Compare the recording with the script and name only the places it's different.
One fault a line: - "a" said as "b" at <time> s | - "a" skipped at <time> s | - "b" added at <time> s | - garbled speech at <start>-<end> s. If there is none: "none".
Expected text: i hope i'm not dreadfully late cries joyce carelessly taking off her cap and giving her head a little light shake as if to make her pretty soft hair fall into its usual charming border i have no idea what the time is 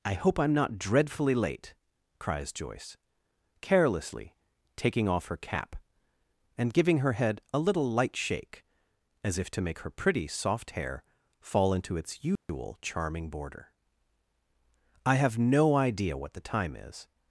none